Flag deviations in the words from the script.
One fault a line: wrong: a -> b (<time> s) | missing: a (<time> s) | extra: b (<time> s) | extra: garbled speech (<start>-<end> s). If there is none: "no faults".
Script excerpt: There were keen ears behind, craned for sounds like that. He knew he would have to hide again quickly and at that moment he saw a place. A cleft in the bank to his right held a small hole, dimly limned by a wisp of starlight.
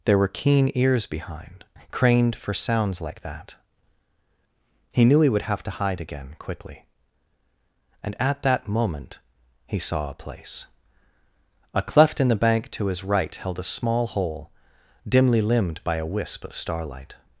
no faults